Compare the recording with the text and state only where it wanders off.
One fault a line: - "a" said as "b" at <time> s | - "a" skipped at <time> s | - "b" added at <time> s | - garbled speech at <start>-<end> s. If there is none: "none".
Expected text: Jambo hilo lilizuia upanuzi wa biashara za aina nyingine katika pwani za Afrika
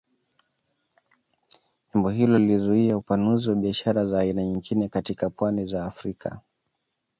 none